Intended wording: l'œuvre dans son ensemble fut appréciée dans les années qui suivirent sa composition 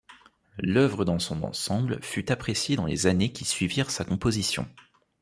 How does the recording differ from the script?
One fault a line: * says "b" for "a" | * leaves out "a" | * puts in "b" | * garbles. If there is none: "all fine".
all fine